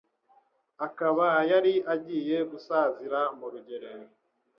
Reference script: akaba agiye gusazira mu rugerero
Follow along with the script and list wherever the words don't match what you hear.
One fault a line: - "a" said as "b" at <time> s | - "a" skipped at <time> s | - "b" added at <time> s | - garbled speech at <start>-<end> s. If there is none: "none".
- "yari" added at 1.5 s